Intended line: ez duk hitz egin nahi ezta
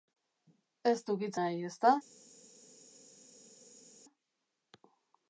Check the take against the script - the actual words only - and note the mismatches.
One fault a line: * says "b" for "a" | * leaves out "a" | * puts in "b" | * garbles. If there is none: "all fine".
* leaves out "egin"